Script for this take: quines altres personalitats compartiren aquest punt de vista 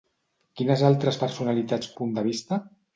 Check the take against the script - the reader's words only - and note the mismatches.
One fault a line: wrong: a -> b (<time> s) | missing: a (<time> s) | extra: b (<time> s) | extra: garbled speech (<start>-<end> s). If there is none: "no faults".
missing: compartiren aquest (1.9 s)